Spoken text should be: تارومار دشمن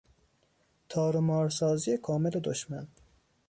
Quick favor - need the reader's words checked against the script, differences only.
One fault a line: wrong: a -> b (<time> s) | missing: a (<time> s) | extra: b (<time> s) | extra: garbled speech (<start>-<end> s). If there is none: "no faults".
extra: سازی کامل (1.5 s)